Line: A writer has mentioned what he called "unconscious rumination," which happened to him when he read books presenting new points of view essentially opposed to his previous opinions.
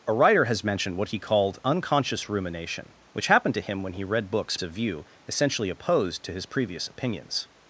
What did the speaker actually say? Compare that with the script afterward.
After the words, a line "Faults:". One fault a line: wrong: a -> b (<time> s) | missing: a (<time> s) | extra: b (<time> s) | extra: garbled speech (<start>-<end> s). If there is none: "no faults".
A writer has mentioned what he called "unconscious rumination," which happened to him when he read books of view essentially opposed to his previous opinions.
Faults:
missing: presenting new points (4.6 s)